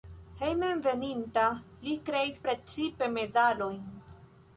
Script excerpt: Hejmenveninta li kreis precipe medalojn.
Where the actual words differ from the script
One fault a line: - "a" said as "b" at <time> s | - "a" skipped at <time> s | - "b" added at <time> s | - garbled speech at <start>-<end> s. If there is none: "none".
none